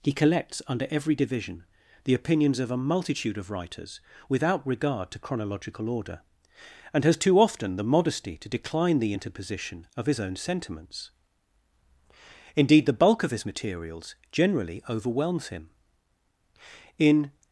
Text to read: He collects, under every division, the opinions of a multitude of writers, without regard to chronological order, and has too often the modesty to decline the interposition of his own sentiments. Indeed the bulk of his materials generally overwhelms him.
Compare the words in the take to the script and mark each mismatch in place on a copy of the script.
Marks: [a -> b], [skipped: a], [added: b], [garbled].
He collects, under every division, the opinions of a multitude of writers, without regard to chronological order, and has too often the modesty to decline the interposition of his own sentiments. Indeed the bulk of his materials generally overwhelms him. [added: In]